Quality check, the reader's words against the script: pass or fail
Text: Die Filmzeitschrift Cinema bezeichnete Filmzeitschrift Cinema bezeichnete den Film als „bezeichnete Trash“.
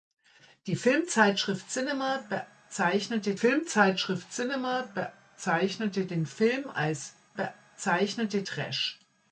pass